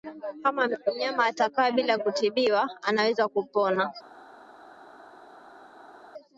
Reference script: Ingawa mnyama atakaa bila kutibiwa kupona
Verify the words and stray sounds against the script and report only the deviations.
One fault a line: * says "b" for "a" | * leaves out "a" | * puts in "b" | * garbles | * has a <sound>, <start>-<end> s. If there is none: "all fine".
* says "Kama" for "Ingawa"
* puts in "anaweza"